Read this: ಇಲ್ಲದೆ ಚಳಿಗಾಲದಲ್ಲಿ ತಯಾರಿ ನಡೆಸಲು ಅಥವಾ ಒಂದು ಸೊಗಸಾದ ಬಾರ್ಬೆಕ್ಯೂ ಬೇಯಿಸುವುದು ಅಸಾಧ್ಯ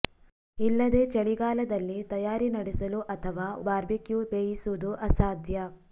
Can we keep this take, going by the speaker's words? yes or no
no